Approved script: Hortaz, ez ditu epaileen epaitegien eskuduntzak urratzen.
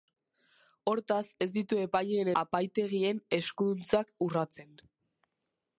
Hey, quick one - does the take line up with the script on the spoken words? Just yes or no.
yes